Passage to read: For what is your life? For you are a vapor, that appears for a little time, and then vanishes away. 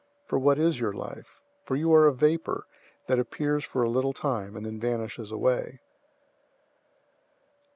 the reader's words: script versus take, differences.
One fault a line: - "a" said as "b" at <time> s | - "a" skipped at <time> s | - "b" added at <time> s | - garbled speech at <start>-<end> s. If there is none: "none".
none